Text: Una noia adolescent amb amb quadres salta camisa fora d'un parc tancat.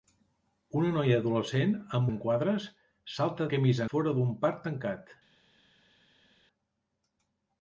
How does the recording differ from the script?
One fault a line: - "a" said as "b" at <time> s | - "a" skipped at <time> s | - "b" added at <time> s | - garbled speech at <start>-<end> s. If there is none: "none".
none